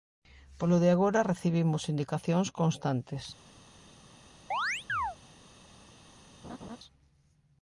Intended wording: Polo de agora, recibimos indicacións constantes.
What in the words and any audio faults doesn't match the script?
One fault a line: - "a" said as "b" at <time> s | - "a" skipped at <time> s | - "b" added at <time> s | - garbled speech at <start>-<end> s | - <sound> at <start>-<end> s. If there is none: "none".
- chirp at 4.5-5.2 s
- laugh at 6.4-6.8 s